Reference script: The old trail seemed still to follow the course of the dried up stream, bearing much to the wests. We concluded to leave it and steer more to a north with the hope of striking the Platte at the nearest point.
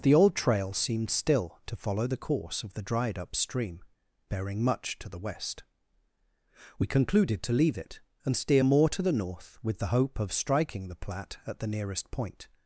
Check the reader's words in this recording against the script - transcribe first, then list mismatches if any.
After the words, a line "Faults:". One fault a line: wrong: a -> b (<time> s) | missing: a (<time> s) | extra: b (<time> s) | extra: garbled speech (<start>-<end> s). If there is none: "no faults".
The old trail seemed still to follow the course of the dried up stream, bearing much to the west. We concluded to leave it and steer more to the north with the hope of striking the Platte at the nearest point.
Faults:
wrong: wests -> west (5.2 s)
wrong: a -> the (9.0 s)